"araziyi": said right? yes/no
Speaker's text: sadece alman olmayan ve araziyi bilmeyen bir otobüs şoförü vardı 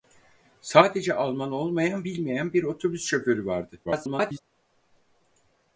no